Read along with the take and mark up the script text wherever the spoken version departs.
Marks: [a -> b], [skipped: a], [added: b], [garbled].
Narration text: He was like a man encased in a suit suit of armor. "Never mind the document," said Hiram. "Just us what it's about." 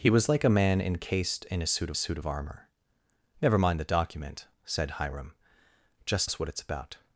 He was like a man encased in a suit suit of armor. "Never mind the document," said Hiram. "Just us what it's about."